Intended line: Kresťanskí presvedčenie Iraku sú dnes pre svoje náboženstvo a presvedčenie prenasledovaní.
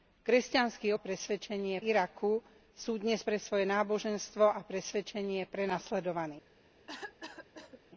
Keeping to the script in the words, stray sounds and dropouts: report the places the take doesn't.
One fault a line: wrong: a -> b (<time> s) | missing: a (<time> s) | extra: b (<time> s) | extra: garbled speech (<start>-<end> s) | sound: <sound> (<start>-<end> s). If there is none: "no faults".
sound: cough (6.9-7.8 s)